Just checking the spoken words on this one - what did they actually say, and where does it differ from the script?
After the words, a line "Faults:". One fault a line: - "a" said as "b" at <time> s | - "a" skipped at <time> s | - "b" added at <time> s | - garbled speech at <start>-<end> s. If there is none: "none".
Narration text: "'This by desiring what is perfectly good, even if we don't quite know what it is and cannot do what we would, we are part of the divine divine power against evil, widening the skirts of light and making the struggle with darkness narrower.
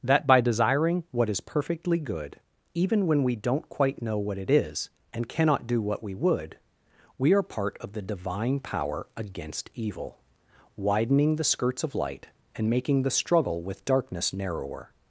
"'That by desiring what is perfectly good, even when we don't quite know what it is and cannot do what we would, we are part of the divine power against evil, widening the skirts of light and making the struggle with darkness narrower.
Faults:
- "This" said as "That" at 0.0 s
- "if" said as "when" at 3.0 s
- "divine" skipped at 8.6 s